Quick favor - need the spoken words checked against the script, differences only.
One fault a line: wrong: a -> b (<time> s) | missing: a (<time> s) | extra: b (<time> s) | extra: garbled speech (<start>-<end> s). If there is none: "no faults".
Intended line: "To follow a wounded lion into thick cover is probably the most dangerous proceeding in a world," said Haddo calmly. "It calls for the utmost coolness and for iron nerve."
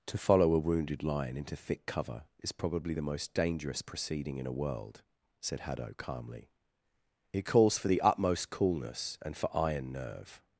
no faults